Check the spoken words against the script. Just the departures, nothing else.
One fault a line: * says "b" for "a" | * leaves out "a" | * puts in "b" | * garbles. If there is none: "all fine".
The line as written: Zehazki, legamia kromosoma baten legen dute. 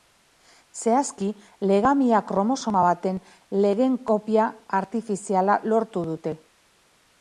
* puts in "kopia artifiziala lortu"